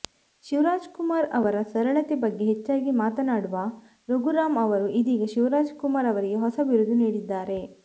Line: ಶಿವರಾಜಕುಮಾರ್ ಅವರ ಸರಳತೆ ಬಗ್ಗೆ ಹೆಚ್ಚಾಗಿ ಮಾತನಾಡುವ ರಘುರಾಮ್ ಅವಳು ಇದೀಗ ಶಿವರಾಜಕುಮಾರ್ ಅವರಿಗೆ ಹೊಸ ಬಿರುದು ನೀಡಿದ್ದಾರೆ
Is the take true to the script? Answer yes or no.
no